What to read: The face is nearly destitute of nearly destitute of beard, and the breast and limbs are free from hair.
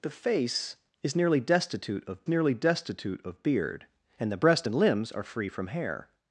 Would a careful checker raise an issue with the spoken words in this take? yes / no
no